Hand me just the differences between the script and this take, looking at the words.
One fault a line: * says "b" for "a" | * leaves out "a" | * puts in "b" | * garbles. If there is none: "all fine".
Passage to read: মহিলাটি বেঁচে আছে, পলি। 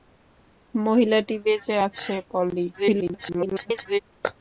* garbles